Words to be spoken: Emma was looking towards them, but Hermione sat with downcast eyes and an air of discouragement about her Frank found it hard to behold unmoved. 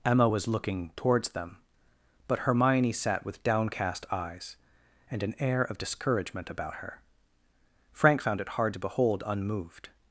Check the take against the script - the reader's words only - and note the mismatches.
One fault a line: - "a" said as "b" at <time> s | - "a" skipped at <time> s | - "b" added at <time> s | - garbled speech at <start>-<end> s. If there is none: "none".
none